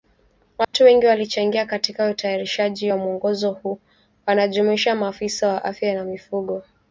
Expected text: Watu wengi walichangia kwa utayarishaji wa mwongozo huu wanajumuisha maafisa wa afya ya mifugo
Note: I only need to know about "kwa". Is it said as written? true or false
false